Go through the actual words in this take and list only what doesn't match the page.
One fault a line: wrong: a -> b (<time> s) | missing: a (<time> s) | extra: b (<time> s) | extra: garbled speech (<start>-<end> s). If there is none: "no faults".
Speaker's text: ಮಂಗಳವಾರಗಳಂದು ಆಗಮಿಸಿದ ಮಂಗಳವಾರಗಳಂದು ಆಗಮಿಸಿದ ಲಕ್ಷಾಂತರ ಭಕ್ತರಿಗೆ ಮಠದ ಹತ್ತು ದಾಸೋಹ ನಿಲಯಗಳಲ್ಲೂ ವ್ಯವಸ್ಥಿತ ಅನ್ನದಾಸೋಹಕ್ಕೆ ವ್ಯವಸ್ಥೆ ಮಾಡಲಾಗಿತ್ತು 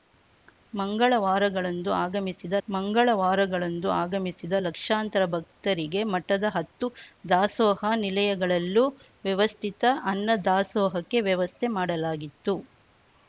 no faults